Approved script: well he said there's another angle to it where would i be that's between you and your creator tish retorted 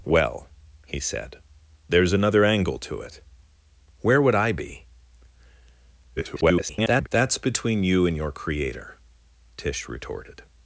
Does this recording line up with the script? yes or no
no